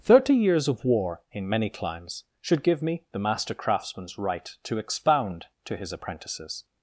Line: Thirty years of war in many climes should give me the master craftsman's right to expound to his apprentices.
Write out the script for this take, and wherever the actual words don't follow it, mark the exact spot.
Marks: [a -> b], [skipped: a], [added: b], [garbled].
Thirty years of war in many climes should give me the master craftsman's right to expound to his apprentices.